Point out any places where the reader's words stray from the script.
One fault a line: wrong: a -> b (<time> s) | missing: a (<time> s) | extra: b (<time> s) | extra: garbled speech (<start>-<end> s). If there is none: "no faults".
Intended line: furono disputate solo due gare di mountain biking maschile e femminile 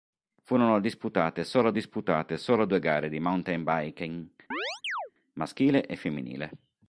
extra: disputate solo (1.7 s)